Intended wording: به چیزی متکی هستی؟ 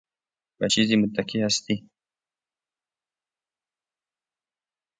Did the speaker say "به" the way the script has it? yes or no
yes